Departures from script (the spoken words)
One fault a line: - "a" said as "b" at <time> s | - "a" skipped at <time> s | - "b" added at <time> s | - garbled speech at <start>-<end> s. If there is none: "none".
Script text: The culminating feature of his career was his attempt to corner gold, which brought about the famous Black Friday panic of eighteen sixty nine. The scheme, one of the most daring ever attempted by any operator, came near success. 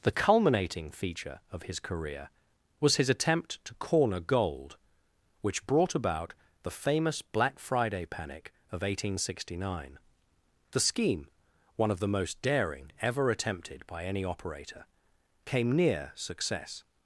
none